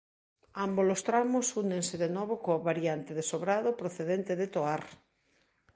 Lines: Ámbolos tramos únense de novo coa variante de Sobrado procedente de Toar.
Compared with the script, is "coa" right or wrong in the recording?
right